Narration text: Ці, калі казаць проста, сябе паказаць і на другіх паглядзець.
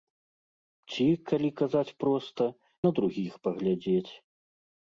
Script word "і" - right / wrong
wrong